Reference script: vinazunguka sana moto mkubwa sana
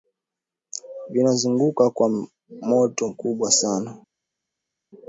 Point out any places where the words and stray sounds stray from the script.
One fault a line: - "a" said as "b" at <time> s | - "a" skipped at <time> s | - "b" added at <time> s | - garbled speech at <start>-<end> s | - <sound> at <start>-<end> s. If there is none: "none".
- "sana" said as "kwa" at 1.9 s